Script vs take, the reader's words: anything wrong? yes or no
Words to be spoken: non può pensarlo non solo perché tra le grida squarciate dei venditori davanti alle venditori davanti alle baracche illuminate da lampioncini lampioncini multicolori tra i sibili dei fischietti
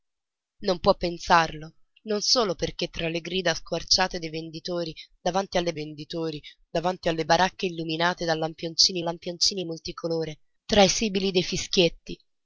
no